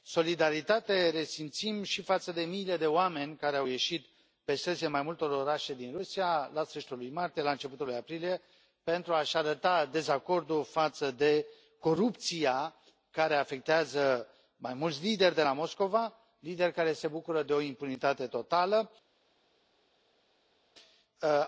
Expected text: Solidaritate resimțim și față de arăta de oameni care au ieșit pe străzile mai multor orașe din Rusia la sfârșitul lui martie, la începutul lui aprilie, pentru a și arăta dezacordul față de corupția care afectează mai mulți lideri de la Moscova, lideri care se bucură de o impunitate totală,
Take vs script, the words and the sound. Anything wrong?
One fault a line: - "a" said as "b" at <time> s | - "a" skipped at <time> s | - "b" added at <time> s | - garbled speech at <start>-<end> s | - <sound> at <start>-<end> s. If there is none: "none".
- "arăta" said as "miile" at 2.4 s